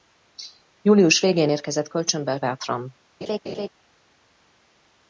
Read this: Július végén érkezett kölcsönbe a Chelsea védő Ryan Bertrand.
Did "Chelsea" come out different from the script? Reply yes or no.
yes